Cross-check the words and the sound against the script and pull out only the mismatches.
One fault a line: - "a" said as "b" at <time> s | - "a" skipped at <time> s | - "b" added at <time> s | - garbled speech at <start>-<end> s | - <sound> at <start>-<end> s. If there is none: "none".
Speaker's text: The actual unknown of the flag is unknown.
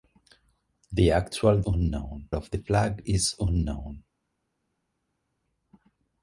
none